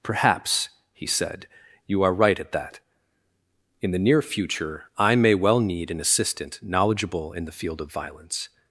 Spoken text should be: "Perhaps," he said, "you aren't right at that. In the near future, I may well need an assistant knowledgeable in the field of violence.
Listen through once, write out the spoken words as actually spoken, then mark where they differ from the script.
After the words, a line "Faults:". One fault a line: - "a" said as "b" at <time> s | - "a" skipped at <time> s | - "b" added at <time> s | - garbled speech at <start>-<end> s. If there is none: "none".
"Perhaps," he said, "you are right at that. In the near future, I may well need an assistant knowledgeable in the field of violence.
Faults:
- "aren't" said as "are" at 2.0 s